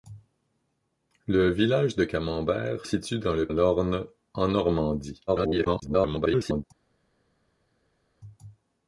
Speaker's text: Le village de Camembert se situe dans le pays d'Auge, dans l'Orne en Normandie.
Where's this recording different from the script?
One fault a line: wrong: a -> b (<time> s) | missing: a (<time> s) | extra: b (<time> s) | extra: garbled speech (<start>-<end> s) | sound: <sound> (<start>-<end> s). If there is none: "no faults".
missing: se (2.9 s)
missing: pays d'Auge dans (3.5 s)
extra: garbled speech (5.3-6.6 s)